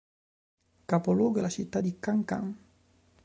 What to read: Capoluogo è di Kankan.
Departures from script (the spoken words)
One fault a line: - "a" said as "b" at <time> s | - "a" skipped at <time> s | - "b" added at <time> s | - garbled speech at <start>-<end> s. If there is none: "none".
- "la città" added at 1.4 s